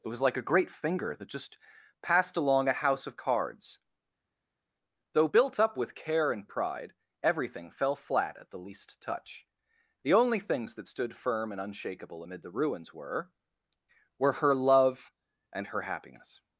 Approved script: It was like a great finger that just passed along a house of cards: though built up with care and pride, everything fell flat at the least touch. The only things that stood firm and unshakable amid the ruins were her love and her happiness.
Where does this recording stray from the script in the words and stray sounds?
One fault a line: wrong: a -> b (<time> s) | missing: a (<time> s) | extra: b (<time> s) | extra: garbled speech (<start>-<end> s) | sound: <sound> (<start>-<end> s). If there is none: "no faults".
extra: were (14.2 s)